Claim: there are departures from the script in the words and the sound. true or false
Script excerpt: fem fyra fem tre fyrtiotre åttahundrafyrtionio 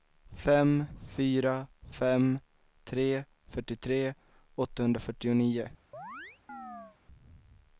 true